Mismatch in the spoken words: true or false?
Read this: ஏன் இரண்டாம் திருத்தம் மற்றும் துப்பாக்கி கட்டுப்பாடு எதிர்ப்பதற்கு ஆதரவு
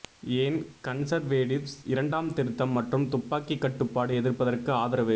true